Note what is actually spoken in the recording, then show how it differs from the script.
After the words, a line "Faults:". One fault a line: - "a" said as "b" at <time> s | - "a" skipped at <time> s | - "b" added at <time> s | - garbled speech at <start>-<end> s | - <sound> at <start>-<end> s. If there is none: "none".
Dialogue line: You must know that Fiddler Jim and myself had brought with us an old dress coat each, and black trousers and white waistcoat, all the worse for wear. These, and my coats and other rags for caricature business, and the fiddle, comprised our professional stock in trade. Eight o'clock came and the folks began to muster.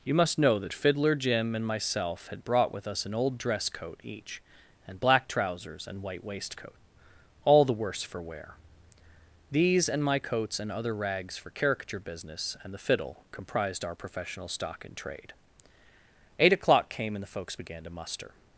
You must know that Fiddler Jim and myself had brought with us an old dress coat each, and black trousers and white waistcoat, all the worse for wear. These, and my coats and other rags for caricature business, and the fiddle, comprised our professional stock in trade. Eight o'clock came and the folks began to muster.
Faults:
none